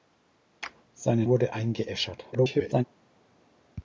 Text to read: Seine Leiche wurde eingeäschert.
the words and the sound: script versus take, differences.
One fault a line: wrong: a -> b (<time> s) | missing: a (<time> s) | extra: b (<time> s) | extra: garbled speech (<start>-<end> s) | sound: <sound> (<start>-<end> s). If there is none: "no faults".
missing: Leiche (1.2 s)
extra: garbled speech (2.3-2.8 s)